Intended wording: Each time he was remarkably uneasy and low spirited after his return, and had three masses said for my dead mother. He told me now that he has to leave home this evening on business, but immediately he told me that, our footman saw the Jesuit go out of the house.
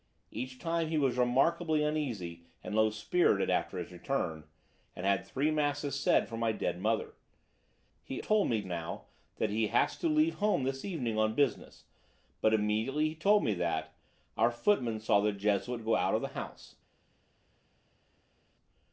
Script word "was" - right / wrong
right